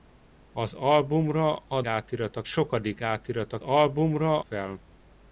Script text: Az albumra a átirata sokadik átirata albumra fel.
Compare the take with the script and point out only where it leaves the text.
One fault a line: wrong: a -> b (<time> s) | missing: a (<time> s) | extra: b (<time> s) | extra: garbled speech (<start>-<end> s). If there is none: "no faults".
no faults